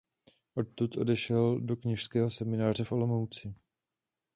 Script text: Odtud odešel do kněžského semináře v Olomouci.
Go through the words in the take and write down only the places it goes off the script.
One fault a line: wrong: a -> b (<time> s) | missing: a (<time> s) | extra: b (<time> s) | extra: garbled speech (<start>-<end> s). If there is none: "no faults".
no faults